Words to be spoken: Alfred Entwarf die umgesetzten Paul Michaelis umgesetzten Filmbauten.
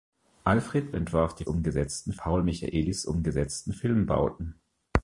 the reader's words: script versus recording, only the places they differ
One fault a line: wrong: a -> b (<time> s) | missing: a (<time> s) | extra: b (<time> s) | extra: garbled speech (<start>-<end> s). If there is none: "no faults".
no faults